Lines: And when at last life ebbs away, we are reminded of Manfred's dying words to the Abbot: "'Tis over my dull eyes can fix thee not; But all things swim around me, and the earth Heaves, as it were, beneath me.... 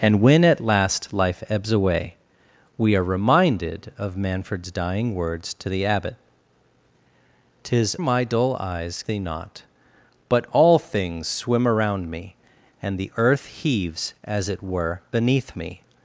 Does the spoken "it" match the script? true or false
true